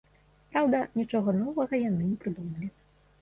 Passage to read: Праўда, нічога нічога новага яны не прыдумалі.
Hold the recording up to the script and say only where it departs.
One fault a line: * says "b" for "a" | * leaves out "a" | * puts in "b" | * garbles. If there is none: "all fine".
* leaves out "нічога"